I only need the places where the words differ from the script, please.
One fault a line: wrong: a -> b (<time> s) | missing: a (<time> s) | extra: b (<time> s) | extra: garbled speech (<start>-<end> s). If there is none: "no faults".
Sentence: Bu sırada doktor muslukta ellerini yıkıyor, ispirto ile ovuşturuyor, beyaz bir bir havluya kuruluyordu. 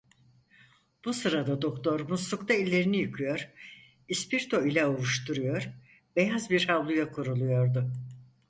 missing: bir (6.7 s)